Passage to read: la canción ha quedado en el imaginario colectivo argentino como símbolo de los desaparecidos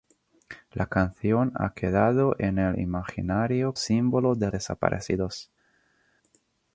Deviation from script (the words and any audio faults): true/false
true